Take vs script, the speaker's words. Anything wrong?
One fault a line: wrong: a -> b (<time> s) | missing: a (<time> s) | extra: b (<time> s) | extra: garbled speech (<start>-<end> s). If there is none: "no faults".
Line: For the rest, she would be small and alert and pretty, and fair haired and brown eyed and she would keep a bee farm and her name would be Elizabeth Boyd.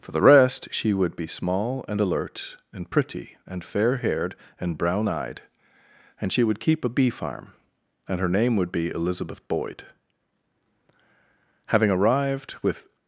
extra: Having arrived with (11.7 s)